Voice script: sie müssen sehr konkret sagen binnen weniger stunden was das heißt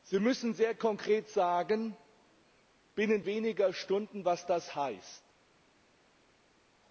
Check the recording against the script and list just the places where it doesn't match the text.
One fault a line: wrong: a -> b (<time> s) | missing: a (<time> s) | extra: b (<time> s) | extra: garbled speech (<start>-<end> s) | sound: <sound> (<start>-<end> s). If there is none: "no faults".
no faults